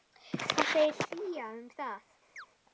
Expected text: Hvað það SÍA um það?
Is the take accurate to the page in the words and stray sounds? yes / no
no